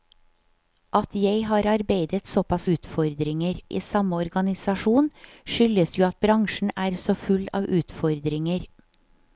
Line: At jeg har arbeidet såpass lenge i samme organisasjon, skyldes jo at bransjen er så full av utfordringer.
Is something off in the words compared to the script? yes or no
yes